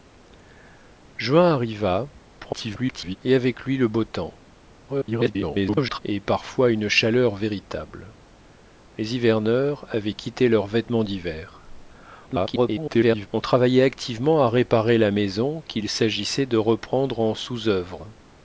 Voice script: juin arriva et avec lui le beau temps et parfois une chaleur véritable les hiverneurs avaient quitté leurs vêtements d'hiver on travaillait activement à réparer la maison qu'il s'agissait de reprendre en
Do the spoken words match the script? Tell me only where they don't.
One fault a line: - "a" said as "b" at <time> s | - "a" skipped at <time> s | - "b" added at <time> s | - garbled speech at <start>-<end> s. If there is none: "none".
- garbled speech at 2.4-3.2 s
- garbled speech at 4.9-6.0 s
- garbled speech at 12.3-13.3 s